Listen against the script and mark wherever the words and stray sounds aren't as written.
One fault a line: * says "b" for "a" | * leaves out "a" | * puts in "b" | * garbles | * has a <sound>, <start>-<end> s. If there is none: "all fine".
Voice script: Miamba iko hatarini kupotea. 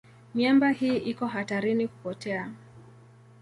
* puts in "hii"